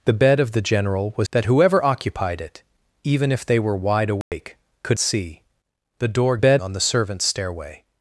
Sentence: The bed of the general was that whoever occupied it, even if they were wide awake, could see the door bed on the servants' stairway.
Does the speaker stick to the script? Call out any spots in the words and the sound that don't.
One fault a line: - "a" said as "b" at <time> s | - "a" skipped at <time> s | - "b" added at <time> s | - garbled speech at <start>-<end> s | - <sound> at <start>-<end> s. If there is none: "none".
- dropout at 4.2-4.3 s